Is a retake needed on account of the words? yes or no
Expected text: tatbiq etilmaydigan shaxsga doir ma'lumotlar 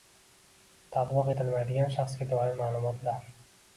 no